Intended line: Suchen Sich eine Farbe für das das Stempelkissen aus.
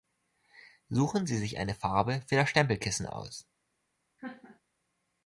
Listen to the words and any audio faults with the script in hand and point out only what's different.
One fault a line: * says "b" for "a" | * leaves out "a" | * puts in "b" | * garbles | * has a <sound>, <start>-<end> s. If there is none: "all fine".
* puts in "Sie"
* leaves out "das"
* has a laugh, 4.2-4.6 s